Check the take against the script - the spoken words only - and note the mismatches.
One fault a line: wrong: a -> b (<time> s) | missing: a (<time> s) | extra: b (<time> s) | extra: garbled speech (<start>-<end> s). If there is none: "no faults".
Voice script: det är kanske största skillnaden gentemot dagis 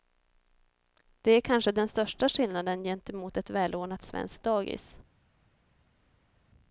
extra: den (1.7 s)
extra: ett välordnat svenskt (3.4 s)